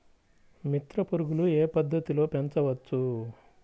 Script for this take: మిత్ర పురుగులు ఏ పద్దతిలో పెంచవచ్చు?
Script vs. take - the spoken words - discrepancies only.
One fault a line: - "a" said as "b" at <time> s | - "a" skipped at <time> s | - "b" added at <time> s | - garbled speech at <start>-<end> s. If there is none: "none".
none